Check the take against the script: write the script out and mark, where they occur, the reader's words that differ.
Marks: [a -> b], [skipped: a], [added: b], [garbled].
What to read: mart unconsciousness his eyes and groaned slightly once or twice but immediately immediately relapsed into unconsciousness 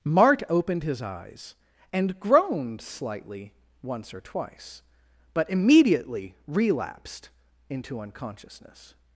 mart [unconsciousness -> opened] his eyes and groaned slightly once or twice but immediately [skipped: immediately] relapsed into unconsciousness